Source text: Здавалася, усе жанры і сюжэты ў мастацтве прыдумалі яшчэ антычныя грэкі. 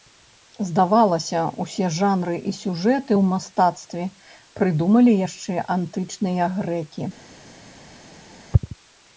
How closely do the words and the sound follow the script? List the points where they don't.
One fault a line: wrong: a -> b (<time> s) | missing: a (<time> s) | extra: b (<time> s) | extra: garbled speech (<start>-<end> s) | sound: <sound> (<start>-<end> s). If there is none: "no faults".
no faults